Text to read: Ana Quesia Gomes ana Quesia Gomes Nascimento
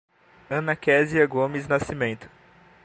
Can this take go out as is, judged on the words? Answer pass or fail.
fail